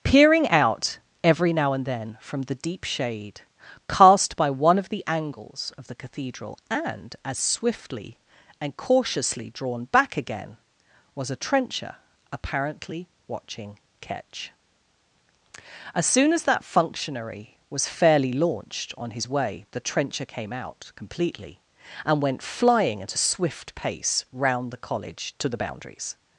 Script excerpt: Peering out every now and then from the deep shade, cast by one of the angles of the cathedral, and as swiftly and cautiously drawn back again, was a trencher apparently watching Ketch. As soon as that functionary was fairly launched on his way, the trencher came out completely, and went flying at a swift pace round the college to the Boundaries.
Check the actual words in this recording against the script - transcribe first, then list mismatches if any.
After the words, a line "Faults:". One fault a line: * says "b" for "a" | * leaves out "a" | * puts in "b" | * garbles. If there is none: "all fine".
Peering out every now and then from the deep shade, cast by one of the angles of the cathedral, and as swiftly and cautiously drawn back again, was a trencher apparently watching Ketch. As soon as that functionary was fairly launched on his way, the trencher came out completely, and went flying at a swift pace round the college to the Boundaries.
Faults:
all fine